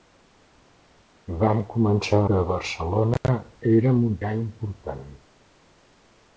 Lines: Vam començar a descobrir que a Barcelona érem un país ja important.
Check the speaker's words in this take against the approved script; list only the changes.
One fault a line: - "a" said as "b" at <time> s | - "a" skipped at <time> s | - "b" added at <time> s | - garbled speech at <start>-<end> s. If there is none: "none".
- "a descobrir" skipped at 2.2 s
- "país" skipped at 4.2 s